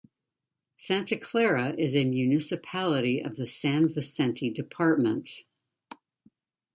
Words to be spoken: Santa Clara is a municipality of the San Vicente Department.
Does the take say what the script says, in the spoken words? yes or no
yes